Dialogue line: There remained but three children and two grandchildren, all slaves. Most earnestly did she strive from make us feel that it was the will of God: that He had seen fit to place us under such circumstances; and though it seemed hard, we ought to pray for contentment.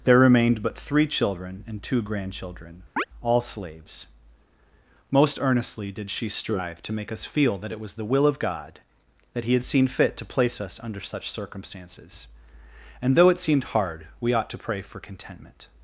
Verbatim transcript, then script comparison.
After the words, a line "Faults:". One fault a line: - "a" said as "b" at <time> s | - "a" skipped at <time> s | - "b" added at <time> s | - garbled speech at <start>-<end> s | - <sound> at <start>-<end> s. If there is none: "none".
There remained but three children and two grandchildren, all slaves. Most earnestly did she strive to make us feel that it was the will of God: that He had seen fit to place us under such circumstances; and though it seemed hard, we ought to pray for contentment.
Faults:
- chirp at 3.0-3.0 s
- "from" said as "to" at 6.8 s